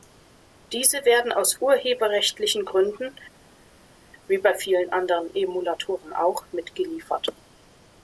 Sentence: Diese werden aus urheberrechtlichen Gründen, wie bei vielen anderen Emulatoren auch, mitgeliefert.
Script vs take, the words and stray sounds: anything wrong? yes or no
no